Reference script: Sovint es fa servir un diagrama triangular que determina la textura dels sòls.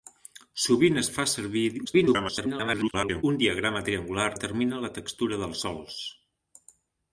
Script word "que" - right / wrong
wrong